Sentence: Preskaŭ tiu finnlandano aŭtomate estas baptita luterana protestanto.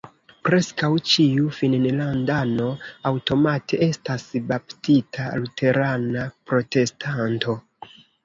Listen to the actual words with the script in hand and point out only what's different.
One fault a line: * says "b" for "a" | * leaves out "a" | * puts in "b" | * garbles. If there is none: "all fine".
* says "ĉiu" for "tiu"